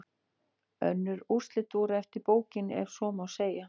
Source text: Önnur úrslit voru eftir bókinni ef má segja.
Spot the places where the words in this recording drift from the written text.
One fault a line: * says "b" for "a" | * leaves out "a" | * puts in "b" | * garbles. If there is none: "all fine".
* puts in "svo"